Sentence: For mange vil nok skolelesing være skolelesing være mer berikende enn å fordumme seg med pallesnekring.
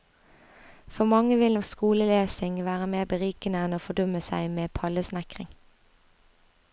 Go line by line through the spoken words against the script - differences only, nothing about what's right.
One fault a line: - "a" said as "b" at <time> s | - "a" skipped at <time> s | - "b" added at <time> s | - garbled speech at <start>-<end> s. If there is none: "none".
- "skolelesing være" skipped at 2.9 s